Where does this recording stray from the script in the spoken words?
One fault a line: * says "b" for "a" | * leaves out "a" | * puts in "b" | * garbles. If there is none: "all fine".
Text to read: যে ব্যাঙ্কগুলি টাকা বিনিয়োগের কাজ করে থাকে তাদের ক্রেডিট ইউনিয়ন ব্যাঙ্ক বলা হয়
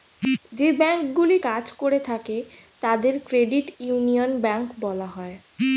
* leaves out "টাকা বিনিয়োগের"